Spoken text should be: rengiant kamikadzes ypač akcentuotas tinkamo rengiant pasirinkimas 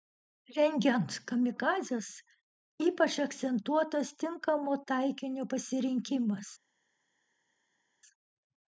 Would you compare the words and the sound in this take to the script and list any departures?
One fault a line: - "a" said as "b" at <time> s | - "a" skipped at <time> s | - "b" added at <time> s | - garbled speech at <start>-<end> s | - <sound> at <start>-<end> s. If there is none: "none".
- "rengiant" said as "taikinio" at 4.9 s